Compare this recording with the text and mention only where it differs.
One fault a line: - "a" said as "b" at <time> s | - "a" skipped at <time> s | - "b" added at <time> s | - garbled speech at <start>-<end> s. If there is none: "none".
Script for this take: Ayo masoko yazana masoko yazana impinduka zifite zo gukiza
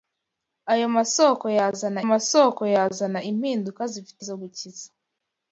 none